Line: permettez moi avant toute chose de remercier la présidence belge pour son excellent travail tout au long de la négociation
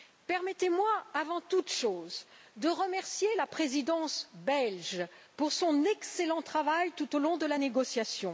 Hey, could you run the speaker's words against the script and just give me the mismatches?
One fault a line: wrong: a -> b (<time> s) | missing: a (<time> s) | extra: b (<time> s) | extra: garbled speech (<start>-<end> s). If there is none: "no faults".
no faults